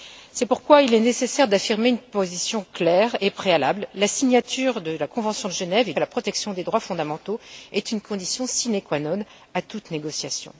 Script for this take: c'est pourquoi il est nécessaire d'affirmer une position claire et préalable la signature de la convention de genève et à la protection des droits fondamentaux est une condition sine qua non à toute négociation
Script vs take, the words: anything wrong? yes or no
no